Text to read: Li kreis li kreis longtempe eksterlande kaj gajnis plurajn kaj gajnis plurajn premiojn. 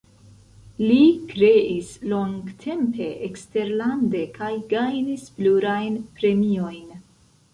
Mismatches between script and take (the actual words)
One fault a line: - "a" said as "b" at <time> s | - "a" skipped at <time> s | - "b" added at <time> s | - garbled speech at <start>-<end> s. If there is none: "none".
- "li kreis" skipped at 1.9 s
- "kaj gajnis plurajn" skipped at 6.0 s